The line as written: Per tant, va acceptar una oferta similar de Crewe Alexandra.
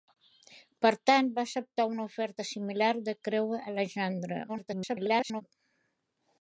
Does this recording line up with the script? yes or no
no